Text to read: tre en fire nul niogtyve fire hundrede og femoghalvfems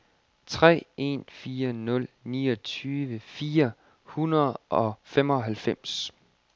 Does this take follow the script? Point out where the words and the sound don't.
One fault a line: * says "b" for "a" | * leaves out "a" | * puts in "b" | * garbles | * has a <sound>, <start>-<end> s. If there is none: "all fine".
all fine